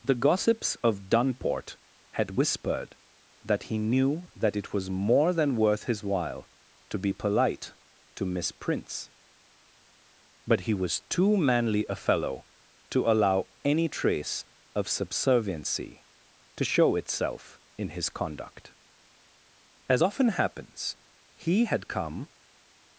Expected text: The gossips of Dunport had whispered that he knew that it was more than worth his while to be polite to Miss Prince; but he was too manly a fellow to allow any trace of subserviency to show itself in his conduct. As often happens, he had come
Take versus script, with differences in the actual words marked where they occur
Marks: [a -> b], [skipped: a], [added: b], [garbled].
The gossips of Dunport had whispered that he knew that it was more than worth his while to be polite to Miss Prince; but he was too manly a fellow to allow any trace of subserviency to show itself in his conduct. As often happens, he had come